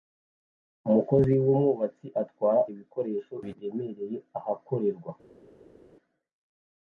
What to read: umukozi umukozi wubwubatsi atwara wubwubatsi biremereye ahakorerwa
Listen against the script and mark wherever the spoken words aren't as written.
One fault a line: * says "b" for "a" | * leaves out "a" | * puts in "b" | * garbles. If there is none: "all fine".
* leaves out "umukozi"
* says "ibikoresho" for "wubwubatsi"